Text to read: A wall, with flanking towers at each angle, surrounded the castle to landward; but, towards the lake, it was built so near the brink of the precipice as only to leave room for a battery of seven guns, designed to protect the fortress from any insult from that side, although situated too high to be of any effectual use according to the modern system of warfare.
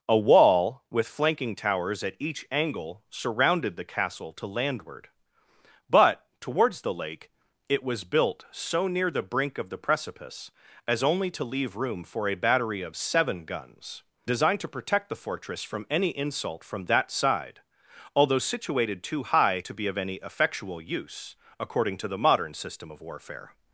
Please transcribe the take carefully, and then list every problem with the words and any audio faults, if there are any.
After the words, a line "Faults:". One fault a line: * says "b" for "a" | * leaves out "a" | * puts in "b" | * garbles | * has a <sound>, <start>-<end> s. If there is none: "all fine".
A wall, with flanking towers at each angle, surrounded the castle to landward; but, towards the lake, it was built so near the brink of the precipice as only to leave room for a battery of seven guns, designed to protect the fortress from any insult from that side, although situated too high to be of any effectual use according to the modern system of warfare.
Faults:
all fine